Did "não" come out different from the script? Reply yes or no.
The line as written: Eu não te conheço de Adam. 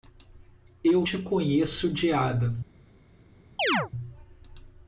yes